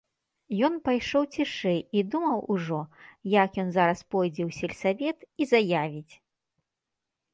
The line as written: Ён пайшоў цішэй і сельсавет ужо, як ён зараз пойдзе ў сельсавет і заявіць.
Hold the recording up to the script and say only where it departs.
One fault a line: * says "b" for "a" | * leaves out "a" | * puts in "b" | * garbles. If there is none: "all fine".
* says "думаў" for "сельсавет"